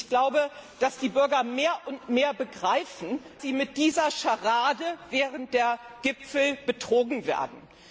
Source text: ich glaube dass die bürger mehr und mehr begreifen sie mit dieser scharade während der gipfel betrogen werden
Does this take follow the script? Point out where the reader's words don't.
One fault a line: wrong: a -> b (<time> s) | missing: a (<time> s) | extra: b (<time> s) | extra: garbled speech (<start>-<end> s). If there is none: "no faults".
no faults